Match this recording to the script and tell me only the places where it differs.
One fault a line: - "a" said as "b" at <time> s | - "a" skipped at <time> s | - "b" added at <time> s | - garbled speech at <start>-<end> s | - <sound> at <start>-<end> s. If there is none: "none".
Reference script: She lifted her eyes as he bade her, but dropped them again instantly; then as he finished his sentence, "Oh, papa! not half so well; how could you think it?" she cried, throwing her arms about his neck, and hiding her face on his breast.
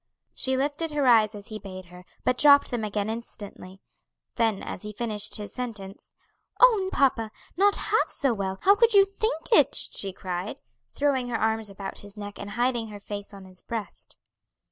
none